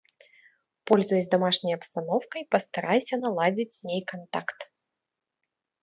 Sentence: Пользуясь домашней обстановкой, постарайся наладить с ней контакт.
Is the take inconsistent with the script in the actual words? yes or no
no